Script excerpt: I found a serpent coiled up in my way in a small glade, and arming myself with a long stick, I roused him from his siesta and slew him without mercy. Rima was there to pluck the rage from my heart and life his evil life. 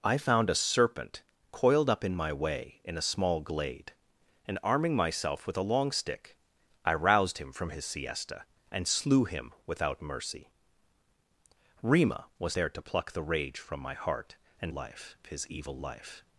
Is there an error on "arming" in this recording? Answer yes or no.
no